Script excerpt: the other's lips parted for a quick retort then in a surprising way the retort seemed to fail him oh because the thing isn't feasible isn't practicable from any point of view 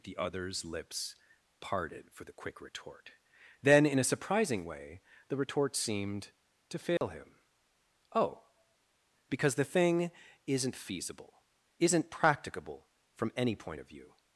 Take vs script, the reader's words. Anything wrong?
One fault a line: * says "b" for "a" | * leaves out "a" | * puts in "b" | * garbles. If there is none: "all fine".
* says "the" for "a"